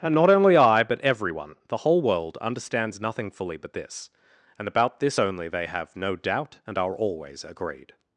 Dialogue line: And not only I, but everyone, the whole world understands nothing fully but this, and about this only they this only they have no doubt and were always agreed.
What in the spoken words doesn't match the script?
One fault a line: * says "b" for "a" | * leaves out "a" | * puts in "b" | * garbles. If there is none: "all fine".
* leaves out "this only they"
* says "are" for "were"